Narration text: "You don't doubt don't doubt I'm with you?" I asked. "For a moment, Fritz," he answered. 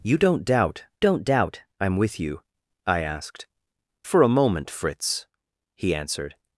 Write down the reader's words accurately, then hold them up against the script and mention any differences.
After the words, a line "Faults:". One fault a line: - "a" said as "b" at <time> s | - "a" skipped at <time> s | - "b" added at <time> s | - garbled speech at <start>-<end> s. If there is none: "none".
"You don't doubt don't doubt I'm with you?" I asked. "For a moment, Fritz," he answered.
Faults:
none